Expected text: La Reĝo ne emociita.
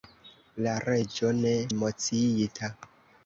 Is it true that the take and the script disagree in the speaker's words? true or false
false